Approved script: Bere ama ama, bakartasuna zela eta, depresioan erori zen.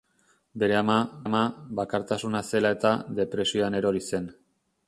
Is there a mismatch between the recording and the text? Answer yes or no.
no